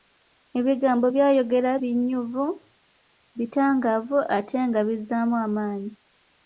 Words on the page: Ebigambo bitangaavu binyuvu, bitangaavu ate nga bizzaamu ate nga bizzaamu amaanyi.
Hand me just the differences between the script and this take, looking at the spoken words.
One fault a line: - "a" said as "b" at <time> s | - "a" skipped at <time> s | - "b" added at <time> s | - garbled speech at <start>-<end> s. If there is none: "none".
- "bitangaavu" said as "by'ayogera" at 1.1 s
- "ate nga bizzaamu" skipped at 5.4 s